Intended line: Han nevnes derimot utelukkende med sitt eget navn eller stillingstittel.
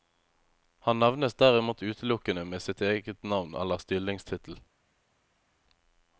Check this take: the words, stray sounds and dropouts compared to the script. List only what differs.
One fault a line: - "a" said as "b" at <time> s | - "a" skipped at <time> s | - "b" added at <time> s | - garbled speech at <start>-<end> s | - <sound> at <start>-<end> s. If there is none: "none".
none